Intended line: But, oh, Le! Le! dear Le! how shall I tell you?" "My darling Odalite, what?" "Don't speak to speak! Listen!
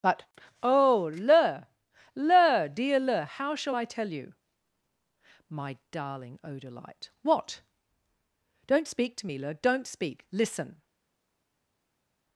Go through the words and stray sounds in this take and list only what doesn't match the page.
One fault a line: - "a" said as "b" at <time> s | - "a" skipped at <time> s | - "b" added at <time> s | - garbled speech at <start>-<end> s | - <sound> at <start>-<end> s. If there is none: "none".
- "me Le Don't" added at 9.2 s